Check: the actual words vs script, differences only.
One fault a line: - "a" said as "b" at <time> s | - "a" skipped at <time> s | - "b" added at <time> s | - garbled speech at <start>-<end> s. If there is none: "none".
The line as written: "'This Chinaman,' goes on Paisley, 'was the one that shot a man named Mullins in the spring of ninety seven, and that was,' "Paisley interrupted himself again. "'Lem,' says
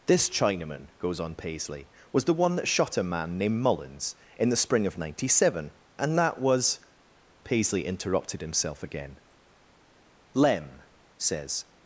none